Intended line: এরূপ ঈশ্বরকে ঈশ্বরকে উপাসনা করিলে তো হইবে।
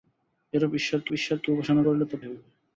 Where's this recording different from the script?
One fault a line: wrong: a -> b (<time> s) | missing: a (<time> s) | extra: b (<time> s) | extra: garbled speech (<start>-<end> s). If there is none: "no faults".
no faults